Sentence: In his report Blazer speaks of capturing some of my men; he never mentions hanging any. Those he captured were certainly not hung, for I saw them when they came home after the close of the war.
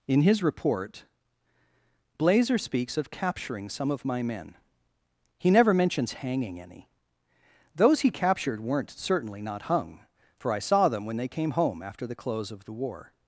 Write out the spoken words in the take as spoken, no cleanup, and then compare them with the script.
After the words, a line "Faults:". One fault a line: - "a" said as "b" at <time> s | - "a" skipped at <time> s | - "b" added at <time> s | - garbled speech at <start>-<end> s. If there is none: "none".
In his report Blazer speaks of capturing some of my men; he never mentions hanging any. Those he captured weren't certainly not hung, for I saw them when they came home after the close of the war.
Faults:
- "were" said as "weren't" at 8.6 s